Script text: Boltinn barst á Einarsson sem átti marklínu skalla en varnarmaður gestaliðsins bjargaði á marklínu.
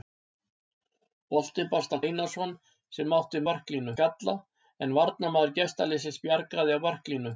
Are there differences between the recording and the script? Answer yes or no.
no